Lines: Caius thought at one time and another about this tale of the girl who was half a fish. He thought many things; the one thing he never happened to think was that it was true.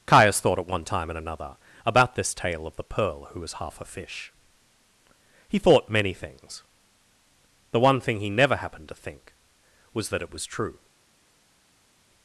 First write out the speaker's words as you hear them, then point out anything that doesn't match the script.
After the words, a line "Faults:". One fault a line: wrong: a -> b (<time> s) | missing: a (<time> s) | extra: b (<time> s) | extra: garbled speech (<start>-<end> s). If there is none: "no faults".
Caius thought at one time and another about this tale of the pearl who was half a fish. He thought many things; the one thing he never happened to think was that it was true.
Faults:
wrong: girl -> pearl (2.8 s)